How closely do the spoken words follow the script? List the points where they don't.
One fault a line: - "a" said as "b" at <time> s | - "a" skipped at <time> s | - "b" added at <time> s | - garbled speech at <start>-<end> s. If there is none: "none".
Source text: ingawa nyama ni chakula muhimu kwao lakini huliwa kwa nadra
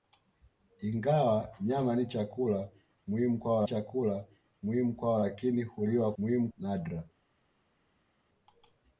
- "chakula muhimu kwao" added at 3.6 s
- "kwa" said as "muhimu" at 6.2 s